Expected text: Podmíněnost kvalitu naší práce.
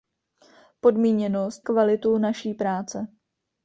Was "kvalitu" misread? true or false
false